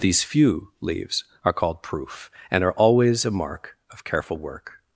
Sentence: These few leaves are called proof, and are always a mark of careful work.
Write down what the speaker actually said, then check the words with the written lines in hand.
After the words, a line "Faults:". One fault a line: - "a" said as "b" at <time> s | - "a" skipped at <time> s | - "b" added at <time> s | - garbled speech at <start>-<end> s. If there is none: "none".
These few leaves are called proof, and are always a mark of careful work.
Faults:
none